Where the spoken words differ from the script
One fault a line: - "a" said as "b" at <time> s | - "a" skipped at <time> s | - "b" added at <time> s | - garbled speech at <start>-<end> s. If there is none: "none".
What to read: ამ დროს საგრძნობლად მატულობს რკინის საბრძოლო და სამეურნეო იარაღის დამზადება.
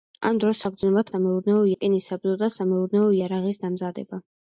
- "მატულობს" said as "სამეურნეო" at 1.1 s